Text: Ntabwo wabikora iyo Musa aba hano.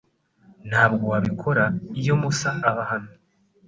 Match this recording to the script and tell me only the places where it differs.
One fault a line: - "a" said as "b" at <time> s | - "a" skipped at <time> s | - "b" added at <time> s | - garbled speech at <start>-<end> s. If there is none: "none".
none